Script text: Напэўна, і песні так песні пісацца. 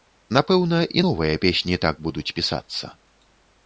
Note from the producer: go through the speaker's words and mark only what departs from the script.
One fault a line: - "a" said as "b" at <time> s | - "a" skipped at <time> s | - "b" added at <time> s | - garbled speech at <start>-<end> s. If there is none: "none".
- "новыя" added at 1.1 s
- "песні" said as "будуць" at 2.1 s